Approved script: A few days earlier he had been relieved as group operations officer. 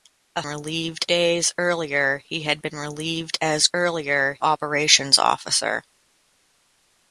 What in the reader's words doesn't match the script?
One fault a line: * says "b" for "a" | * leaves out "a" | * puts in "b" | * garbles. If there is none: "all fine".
* says "relieved" for "few"
* says "earlier" for "group"